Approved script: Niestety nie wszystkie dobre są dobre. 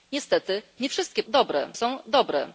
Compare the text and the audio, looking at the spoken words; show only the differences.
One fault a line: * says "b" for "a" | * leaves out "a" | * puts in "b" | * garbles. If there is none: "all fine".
all fine